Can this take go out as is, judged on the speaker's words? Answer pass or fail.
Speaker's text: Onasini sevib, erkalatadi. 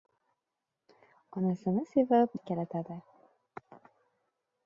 pass